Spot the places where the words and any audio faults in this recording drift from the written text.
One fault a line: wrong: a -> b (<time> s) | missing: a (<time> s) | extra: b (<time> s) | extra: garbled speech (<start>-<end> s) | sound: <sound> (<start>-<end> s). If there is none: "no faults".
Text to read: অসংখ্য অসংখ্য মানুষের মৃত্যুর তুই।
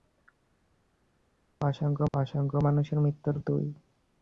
no faults